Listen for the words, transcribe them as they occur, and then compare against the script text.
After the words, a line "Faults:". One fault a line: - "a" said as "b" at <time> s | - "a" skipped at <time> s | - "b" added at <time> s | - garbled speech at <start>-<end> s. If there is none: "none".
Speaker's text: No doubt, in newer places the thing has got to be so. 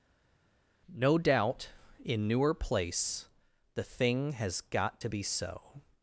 No doubt, in newer place the thing has got to be so.
Faults:
- "places" said as "place" at 2.5 s